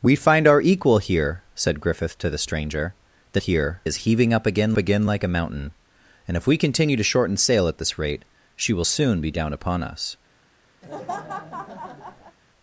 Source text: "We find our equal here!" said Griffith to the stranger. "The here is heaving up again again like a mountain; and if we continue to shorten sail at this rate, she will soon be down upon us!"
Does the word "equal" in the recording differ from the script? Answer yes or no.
no